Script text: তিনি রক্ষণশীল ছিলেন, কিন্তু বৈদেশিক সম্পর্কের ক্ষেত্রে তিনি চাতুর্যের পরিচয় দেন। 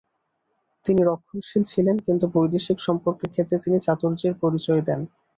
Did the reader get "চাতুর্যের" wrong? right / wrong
right